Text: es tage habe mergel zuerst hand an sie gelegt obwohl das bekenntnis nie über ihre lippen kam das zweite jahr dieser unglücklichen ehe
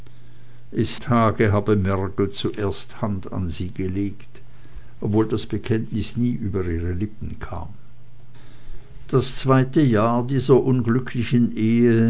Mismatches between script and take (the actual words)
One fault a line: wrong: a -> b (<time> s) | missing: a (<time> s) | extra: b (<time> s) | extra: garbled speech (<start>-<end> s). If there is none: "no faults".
no faults